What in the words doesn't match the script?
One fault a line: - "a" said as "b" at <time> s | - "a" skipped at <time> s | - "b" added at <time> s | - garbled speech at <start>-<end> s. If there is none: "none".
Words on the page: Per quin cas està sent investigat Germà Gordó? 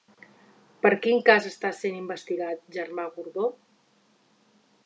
none